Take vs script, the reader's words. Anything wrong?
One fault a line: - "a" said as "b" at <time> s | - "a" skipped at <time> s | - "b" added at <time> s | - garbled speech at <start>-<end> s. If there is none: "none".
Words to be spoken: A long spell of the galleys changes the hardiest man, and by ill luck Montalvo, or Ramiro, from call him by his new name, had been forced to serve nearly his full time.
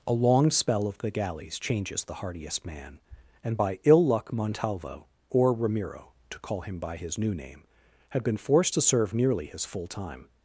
- "from" said as "to" at 6.3 s